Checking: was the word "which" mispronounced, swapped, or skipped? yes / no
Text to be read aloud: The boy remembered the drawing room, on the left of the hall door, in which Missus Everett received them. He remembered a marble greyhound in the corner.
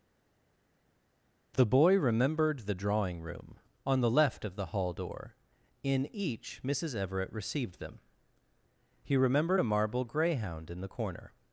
yes